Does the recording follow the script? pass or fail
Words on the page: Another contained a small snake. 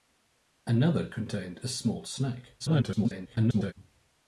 fail